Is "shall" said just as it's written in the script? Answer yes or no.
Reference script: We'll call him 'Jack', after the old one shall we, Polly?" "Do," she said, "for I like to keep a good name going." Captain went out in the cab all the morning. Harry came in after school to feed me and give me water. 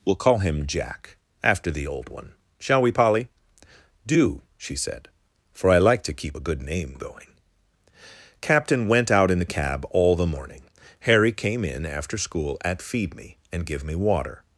yes